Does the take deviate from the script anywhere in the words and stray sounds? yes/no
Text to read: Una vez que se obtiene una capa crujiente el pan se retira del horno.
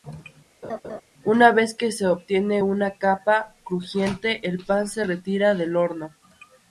yes